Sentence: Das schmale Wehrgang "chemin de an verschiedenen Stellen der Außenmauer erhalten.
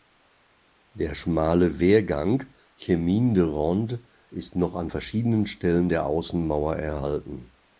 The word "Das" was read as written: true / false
false